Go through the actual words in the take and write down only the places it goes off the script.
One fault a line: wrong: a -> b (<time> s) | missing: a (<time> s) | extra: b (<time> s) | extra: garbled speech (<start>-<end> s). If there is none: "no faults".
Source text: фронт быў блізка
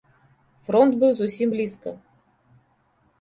extra: зусім (1.2 s)